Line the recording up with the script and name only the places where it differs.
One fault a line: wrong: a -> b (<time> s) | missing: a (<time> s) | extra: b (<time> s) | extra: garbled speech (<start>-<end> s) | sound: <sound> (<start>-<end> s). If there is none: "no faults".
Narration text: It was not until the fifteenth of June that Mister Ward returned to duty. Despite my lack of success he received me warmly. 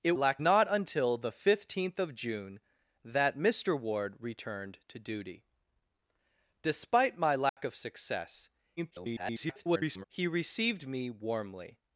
wrong: was -> lack (0.1 s)
sound: dropout (7.5-7.6 s)
extra: garbled speech (8.8-10.0 s)